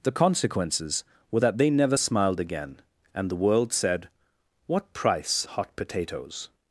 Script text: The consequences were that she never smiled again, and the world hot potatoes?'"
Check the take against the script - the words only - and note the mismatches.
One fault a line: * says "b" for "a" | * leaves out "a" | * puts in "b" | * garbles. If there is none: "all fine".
* says "they" for "she"
* puts in "said What price"